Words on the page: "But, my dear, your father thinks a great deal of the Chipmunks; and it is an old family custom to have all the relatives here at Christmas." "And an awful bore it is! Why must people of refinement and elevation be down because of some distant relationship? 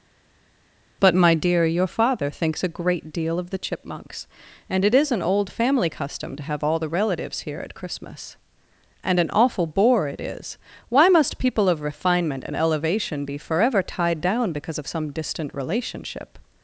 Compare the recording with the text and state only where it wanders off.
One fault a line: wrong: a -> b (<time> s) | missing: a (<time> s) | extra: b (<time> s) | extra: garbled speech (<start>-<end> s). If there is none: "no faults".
extra: forever tied (13.4 s)